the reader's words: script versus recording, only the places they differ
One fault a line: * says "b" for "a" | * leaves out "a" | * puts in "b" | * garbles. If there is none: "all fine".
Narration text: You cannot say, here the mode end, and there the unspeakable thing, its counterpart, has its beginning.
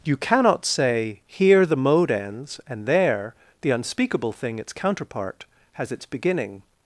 * says "ends" for "end"